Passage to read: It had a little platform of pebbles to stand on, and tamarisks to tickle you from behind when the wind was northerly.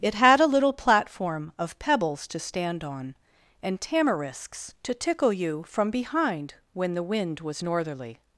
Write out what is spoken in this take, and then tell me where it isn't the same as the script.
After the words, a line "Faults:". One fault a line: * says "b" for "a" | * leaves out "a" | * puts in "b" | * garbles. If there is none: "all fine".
It had a little platform of pebbles to stand on, and tamarisks to tickle you from behind when the wind was northerly.
Faults:
all fine